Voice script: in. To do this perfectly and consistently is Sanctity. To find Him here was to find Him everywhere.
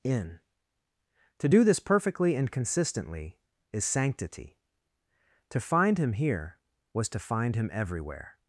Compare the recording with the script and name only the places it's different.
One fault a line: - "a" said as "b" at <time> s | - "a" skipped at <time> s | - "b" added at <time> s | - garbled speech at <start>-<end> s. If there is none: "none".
none